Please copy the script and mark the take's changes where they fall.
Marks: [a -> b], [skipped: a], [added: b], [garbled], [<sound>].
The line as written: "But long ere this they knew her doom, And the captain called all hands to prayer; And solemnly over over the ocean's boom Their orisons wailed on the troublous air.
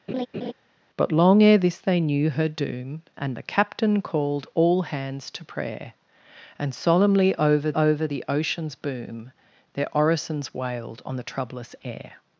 [laugh] "But long ere this they knew her doom, And the captain called all hands to prayer; And solemnly over over the ocean's boom Their orisons wailed on the troublous air.